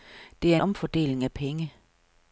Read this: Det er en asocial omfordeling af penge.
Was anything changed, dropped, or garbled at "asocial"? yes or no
yes